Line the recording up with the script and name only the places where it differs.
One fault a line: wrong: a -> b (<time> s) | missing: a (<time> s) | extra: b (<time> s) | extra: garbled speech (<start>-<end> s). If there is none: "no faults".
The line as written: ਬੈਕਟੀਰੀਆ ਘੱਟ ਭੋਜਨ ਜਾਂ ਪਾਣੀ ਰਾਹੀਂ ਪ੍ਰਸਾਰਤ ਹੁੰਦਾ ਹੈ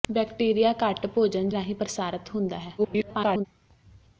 missing: ਜਾਂ ਪਾਣੀ (1.5 s)
extra: garbled speech (2.8-3.5 s)